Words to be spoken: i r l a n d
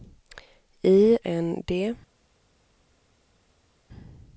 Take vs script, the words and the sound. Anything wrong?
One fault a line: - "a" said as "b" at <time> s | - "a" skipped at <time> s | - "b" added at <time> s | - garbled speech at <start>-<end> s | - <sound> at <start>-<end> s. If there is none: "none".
- "r l a" skipped at 1.2 s